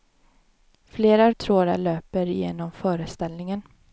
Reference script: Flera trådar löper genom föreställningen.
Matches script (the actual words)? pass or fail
pass